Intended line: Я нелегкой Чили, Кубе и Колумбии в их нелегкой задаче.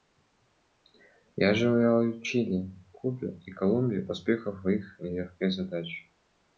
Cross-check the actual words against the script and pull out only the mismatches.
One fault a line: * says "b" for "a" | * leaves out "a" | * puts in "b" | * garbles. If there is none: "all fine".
* says "желаю" for "нелегкой"
* puts in "успехов"